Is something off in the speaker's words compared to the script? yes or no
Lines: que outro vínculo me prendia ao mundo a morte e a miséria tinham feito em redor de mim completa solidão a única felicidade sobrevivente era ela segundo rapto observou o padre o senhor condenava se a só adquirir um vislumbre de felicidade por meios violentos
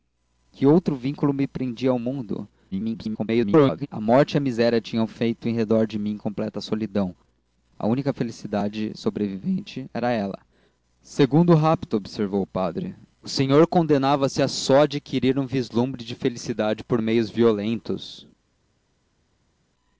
yes